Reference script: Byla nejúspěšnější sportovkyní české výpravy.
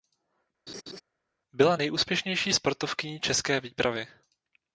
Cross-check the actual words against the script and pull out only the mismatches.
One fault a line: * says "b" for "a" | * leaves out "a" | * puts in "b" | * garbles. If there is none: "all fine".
all fine